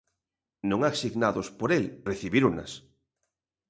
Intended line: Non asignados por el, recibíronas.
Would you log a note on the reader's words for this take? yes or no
no